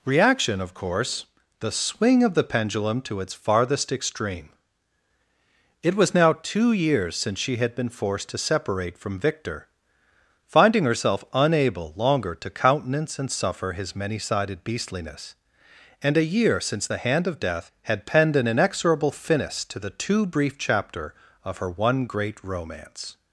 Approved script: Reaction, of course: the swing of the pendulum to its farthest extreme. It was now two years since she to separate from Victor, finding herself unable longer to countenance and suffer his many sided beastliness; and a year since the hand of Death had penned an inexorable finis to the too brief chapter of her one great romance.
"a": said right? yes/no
yes